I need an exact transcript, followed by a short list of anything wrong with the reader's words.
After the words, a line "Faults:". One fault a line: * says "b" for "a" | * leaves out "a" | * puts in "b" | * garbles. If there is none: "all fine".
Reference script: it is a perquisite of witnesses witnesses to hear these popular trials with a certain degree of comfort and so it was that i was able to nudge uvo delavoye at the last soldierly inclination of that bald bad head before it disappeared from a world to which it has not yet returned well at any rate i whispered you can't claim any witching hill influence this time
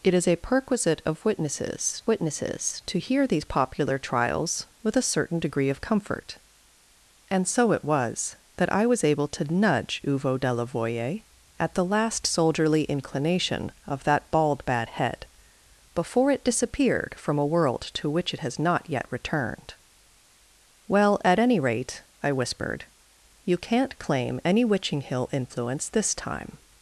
it is a perquisite of witnesses witnesses to hear these popular trials with a certain degree of comfort and so it was that i was able to nudge uvo delavoye at the last soldierly inclination of that bald bad head before it disappeared from a world to which it has not yet returned well at any rate i whispered you can't claim any witching hill influence this time
Faults:
all fine